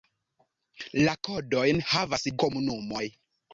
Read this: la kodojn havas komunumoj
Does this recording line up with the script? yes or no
yes